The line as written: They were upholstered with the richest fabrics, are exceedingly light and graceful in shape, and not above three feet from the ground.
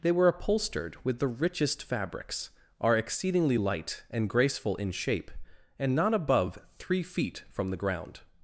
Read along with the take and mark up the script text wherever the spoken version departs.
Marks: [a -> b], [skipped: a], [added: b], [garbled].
They were upholstered with the richest fabrics, are exceedingly light and graceful in shape, and not above three feet from the ground.